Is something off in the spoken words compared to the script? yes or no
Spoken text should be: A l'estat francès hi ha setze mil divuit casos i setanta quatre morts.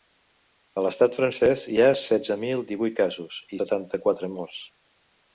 no